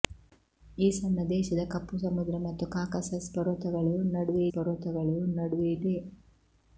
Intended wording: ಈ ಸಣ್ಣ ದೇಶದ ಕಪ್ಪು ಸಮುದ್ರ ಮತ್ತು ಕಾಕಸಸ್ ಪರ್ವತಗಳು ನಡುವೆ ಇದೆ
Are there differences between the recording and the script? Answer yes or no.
yes